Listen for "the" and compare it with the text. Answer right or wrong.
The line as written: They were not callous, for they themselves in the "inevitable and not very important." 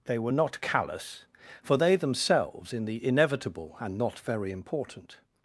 right